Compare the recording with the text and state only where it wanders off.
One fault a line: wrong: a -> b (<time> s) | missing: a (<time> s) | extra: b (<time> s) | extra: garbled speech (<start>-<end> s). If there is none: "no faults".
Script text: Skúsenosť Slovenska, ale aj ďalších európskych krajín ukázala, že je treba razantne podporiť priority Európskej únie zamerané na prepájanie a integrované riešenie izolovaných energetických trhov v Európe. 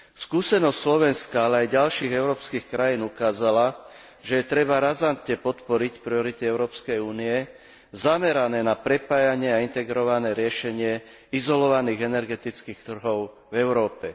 no faults